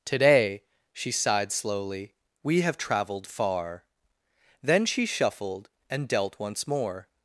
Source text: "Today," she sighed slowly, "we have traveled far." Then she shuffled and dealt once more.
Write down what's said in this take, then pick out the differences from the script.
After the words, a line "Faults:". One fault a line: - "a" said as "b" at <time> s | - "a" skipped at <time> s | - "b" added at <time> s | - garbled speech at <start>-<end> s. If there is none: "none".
"Today," she sighed slowly, "we have traveled far." Then she shuffled and dealt once more.
Faults:
none